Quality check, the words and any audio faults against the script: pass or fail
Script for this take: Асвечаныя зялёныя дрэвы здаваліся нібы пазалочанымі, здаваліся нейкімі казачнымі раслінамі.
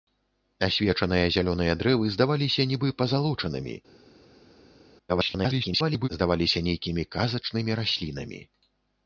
fail